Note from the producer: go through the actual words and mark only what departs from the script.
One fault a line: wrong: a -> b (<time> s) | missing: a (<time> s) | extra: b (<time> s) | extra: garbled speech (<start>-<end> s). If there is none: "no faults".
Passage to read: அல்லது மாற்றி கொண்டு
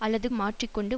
no faults